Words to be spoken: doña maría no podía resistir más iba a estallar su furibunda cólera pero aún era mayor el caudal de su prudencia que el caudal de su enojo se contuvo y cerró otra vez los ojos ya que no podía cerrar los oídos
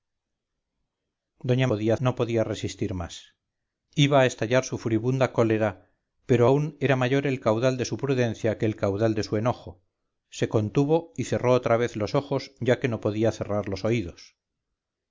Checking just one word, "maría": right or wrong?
wrong